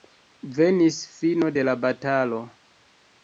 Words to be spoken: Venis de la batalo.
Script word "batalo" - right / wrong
right